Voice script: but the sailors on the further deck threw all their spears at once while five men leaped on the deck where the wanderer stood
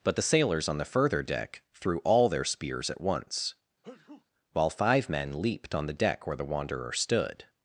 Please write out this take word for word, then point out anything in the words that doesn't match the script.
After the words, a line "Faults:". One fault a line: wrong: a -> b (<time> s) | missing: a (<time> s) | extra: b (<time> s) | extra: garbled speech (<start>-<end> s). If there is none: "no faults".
but the sailors on the further deck threw all their spears at once while five men leaped on the deck where the wanderer stood
Faults:
no faults